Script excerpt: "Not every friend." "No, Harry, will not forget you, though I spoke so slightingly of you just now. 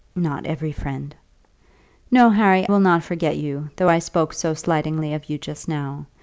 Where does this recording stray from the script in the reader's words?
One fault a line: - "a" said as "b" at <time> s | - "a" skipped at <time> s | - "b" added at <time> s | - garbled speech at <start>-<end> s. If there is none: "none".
none